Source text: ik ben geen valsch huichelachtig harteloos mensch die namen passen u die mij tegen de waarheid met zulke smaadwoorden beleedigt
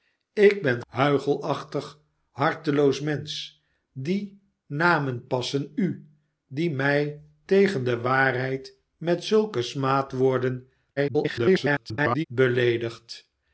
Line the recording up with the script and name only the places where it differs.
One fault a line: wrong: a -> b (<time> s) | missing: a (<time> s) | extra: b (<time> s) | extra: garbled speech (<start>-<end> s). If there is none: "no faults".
missing: geen valsch (0.8 s)
extra: garbled speech (11.0-12.2 s)